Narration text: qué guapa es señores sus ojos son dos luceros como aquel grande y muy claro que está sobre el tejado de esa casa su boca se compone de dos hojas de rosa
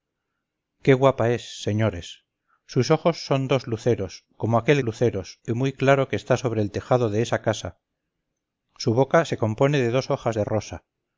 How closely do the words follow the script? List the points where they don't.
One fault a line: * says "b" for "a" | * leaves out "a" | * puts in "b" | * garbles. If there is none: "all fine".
* says "luceros" for "grande"